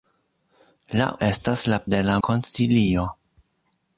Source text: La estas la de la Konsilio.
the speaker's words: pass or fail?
pass